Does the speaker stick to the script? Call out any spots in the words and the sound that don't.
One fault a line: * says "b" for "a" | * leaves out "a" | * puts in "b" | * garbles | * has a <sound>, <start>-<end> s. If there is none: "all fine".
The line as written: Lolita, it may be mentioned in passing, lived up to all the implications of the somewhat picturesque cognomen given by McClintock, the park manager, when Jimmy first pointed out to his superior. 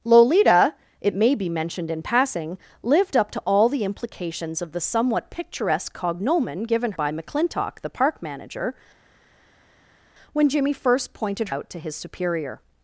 all fine